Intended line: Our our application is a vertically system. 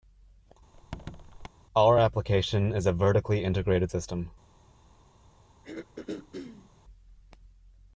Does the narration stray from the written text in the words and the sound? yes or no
yes